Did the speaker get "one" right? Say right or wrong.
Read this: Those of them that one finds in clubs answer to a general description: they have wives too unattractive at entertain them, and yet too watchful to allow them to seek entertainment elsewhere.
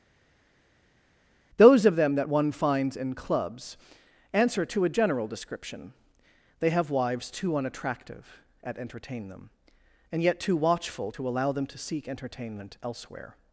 right